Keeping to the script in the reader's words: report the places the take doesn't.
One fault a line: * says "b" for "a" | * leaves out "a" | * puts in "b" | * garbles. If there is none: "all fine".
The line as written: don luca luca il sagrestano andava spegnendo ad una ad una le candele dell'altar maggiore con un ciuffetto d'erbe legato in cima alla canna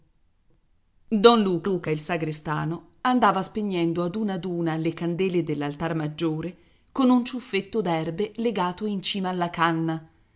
all fine